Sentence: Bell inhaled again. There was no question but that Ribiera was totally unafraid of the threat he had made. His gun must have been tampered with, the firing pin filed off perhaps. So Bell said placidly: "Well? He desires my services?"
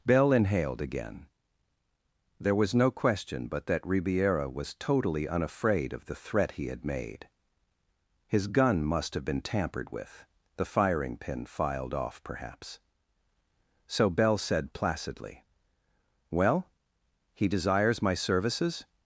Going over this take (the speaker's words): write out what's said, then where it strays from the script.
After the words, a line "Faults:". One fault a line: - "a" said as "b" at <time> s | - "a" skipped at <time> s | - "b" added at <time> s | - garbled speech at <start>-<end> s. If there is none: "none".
Bell inhaled again. There was no question but that Ribiera was totally unafraid of the threat he had made. His gun must have been tampered with, the firing pin filed off perhaps. So Bell said placidly: "Well? He desires my services?"
Faults:
none